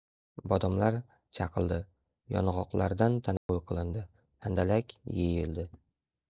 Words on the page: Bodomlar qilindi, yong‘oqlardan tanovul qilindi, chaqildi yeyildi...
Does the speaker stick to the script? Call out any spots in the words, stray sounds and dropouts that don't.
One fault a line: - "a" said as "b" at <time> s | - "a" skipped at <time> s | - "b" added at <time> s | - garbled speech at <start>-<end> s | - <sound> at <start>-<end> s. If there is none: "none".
- "qilindi" said as "chaqildi" at 1.4 s
- dropout at 3.4-3.5 s
- "chaqildi" said as "handalak" at 4.5 s